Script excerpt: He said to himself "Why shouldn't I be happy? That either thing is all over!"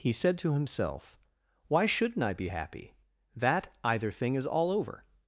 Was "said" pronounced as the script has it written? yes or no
yes